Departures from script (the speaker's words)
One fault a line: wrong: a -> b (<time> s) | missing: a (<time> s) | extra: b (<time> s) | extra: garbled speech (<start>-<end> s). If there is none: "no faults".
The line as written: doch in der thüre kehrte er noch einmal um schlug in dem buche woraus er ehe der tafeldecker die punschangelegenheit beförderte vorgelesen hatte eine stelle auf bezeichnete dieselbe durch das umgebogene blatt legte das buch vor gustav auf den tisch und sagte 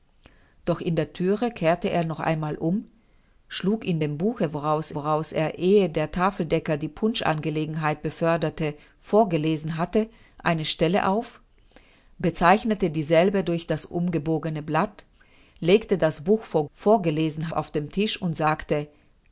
extra: woraus (4.9 s)
wrong: gustav -> vorgelesen (16.7 s)